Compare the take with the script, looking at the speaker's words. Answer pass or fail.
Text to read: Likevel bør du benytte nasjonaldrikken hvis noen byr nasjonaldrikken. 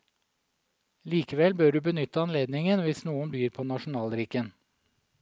fail